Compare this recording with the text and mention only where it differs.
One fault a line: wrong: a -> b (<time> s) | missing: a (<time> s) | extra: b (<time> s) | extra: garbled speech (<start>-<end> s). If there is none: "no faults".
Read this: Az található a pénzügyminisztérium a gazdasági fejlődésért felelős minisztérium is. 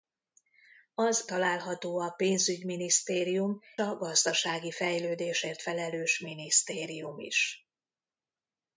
no faults